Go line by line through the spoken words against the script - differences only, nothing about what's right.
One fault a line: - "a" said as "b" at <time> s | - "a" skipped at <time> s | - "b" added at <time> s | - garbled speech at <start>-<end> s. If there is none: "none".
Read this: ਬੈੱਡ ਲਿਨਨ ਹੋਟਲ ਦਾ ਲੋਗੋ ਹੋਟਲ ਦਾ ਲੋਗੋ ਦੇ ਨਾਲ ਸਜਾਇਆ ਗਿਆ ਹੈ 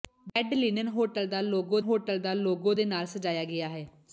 none